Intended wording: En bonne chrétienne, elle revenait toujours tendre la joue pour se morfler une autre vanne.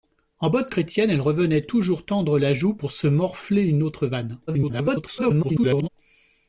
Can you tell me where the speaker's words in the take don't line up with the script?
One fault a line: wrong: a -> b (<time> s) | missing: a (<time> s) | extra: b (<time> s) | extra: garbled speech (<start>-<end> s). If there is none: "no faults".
extra: garbled speech (4.5-5.9 s)